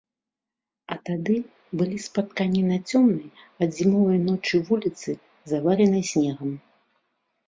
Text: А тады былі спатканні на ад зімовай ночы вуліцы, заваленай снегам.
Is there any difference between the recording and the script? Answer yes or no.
yes